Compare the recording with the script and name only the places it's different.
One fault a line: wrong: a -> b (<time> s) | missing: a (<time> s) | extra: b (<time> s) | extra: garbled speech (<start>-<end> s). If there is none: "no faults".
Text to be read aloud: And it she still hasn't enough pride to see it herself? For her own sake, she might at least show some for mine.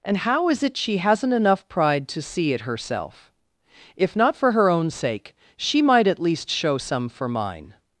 extra: how is (0.2 s)
missing: still (1.0 s)
extra: If not (4.0 s)